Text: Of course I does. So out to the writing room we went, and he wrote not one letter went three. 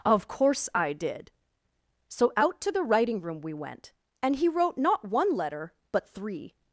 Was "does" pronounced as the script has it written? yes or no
no